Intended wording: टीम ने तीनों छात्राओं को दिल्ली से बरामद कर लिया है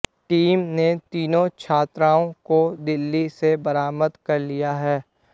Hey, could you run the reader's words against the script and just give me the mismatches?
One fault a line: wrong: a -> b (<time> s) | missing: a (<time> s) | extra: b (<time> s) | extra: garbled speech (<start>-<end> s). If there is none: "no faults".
no faults